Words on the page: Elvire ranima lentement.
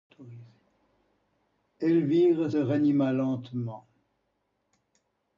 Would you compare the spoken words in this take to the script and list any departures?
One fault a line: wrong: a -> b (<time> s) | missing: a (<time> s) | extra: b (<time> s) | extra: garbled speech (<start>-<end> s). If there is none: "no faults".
no faults